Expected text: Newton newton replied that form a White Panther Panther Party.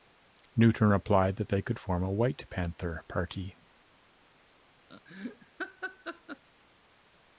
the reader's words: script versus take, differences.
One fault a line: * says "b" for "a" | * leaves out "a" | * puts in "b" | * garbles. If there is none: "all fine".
* leaves out "newton"
* puts in "they could"
* leaves out "Panther"